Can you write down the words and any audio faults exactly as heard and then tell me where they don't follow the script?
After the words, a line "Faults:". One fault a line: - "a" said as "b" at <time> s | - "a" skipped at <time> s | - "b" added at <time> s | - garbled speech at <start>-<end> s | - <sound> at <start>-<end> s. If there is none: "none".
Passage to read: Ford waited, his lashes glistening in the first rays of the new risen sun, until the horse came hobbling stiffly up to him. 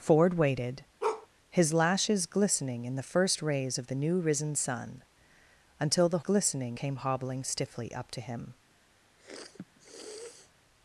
Ford waited, his lashes glistening in the first rays of the new risen sun, until the glistening came hobbling stiffly up to him.
Faults:
- bark at 1.0-1.3 s
- "horse" said as "glistening" at 6.2 s
- sniff at 9.2-10.5 s